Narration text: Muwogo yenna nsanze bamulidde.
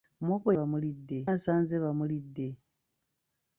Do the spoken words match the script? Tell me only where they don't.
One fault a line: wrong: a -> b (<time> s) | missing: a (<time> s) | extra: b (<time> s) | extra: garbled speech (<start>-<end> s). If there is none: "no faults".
wrong: yenna -> bamulidde (0.6 s)